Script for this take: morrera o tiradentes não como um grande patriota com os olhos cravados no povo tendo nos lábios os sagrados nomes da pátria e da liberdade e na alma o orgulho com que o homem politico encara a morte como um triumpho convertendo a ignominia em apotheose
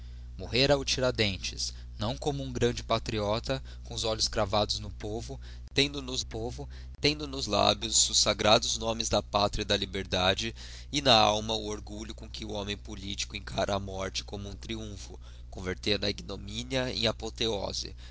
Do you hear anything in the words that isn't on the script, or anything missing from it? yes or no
yes